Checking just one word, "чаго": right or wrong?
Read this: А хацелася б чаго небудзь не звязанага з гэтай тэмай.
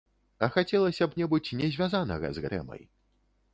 wrong